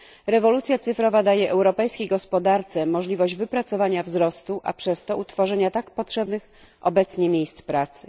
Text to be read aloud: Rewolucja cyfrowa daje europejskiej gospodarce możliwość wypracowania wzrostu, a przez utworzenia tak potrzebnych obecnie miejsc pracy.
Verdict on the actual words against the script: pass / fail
fail